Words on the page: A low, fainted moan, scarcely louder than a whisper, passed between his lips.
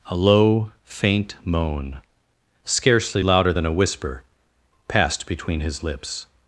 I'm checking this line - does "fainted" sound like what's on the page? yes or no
no